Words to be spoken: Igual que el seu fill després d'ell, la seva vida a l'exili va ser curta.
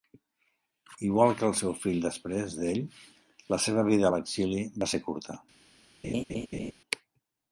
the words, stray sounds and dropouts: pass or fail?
fail